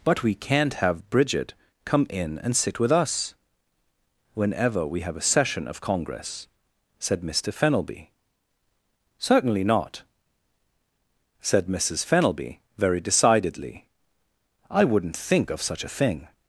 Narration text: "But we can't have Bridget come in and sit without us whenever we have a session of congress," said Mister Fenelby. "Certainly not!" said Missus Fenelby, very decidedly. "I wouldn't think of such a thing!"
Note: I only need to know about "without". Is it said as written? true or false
false